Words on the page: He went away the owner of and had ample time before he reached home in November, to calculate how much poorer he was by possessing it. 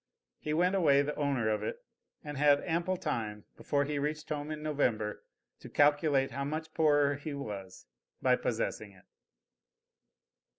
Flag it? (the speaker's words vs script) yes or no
yes